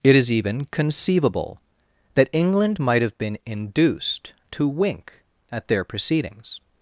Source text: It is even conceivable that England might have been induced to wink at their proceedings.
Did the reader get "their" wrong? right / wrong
right